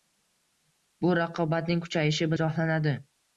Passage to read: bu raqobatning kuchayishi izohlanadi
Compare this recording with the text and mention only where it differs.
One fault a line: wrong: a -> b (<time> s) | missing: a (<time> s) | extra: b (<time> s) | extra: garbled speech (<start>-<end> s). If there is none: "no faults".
no faults